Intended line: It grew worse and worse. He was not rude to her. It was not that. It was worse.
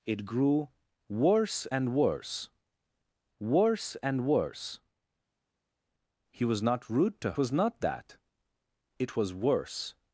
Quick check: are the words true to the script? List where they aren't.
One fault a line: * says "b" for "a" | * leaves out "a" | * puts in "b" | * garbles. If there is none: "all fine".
* puts in "worse and worse"
* leaves out "her It"